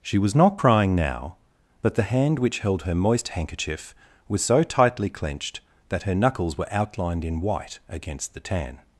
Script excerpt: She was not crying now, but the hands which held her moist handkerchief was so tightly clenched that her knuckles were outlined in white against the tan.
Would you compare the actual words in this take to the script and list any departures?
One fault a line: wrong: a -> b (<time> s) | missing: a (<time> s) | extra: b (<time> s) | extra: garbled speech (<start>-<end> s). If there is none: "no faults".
wrong: hands -> hand (2.0 s)